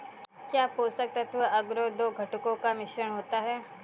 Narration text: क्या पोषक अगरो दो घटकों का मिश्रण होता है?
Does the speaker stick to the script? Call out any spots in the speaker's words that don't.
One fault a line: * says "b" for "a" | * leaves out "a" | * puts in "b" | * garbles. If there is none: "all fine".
* puts in "तत्व"